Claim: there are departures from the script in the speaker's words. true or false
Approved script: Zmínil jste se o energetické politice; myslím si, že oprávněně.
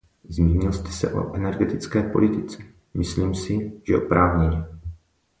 false